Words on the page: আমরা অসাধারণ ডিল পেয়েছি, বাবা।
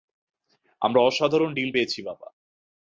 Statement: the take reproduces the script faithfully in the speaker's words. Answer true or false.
true